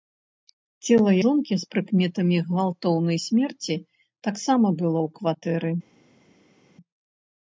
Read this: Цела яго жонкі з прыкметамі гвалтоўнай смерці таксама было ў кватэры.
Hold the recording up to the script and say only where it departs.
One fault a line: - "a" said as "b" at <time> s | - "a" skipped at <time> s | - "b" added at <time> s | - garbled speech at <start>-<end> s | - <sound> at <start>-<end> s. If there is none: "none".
- "яго" skipped at 1.1 s